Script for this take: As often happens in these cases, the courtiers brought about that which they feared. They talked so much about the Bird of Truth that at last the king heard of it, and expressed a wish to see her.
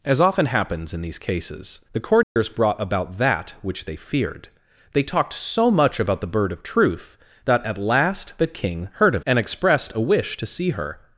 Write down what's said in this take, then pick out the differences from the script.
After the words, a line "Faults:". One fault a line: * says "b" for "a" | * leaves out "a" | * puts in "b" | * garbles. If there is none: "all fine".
As often happens in these cases, the courtiers brought about that which they feared. They talked so much about the Bird of Truth that at last the king heard of and expressed a wish to see her.
Faults:
* leaves out "it"